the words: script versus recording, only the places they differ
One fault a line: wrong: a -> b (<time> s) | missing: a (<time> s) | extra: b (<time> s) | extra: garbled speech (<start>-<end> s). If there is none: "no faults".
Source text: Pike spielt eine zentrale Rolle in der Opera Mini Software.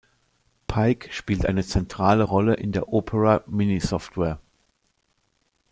no faults